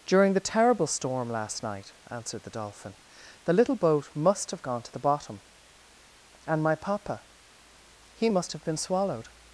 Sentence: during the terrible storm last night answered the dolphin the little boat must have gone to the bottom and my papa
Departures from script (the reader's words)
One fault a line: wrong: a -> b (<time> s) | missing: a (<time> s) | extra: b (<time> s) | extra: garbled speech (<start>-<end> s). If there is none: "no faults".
extra: he must have been swallowed (8.2 s)